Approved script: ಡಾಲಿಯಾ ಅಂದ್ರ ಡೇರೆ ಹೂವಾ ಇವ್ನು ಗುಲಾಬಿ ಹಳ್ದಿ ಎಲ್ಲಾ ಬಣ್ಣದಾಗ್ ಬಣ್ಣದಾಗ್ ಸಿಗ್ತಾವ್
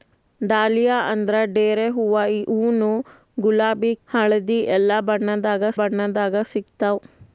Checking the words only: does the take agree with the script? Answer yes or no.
yes